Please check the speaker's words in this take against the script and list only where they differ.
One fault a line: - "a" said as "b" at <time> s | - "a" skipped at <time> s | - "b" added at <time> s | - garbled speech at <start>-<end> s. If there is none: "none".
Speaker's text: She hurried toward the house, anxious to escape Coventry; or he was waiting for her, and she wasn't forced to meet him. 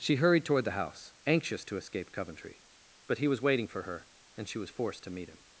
- "or" said as "but" at 3.0 s
- "wasn't" said as "was" at 4.6 s